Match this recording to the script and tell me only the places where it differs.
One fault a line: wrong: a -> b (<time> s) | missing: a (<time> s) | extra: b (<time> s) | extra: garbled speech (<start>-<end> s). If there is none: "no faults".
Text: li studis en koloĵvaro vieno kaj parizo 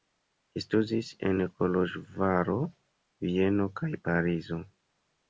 no faults